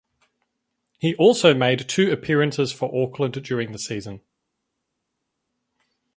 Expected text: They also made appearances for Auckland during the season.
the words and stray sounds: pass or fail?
fail